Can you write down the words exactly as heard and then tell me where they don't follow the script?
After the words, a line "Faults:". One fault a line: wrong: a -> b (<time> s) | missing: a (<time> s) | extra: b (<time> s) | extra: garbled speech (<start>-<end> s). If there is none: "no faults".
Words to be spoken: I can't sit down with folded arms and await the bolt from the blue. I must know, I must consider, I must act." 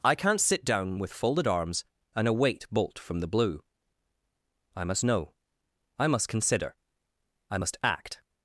I can't sit down with folded arms and await bolt from the blue. I must know, I must consider, I must act."
Faults:
missing: the (2.7 s)